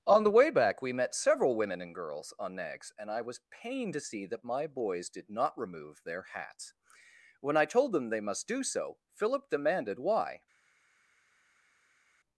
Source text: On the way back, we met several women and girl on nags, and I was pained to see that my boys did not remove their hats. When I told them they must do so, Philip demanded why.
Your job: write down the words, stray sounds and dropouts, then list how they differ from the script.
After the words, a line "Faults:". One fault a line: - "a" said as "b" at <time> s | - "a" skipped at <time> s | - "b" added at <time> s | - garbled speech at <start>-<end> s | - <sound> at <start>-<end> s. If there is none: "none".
On the way back, we met several women and girls on nags, and I was pained to see that my boys did not remove their hats. When I told them they must do so, Philip demanded why.
Faults:
- "girl" said as "girls" at 1.9 s